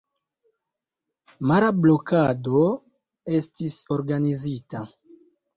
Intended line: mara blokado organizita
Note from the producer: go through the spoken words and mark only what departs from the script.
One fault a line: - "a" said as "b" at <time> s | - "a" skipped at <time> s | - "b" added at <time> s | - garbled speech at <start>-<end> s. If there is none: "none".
- "estis" added at 3.4 s